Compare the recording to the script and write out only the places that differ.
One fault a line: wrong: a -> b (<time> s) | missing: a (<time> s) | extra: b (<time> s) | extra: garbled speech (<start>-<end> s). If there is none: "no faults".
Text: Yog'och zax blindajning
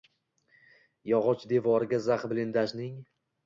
extra: devoriga (1.5 s)